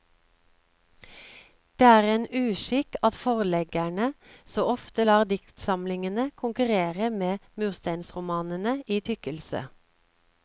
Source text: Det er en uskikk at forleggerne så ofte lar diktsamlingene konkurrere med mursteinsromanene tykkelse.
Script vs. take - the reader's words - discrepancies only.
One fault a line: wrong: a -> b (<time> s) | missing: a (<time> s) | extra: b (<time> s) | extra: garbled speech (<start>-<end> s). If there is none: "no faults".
extra: i (8.9 s)